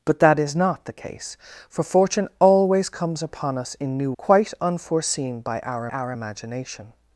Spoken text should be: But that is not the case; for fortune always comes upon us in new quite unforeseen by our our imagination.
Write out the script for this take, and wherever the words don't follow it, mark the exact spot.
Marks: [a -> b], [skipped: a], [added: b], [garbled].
But that is not the case; for fortune always comes upon us in new quite unforeseen by our our imagination.